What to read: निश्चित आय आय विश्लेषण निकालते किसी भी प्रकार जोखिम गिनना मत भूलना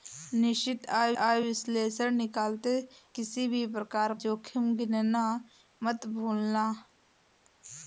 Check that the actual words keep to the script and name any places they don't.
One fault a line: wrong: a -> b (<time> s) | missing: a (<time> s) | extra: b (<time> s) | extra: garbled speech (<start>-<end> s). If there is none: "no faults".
no faults